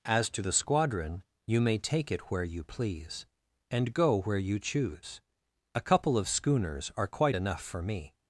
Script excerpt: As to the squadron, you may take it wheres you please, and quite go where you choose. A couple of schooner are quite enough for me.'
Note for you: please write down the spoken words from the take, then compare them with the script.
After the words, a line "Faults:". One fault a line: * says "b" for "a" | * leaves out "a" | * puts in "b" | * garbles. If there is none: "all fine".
As to the squadron, you may take it where you please, and go where you choose. A couple of schooners are quite enough for me.'
Faults:
* says "where" for "wheres"
* leaves out "quite"
* says "schooners" for "schooner"